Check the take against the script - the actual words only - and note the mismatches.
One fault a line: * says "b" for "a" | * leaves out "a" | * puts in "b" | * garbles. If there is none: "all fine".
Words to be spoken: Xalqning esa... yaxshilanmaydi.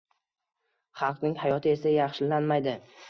* puts in "hayoti"